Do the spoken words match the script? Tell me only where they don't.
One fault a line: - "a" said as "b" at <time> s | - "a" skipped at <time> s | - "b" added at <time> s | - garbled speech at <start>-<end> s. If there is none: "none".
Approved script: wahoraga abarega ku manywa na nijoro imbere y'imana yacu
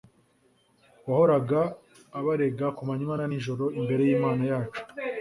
none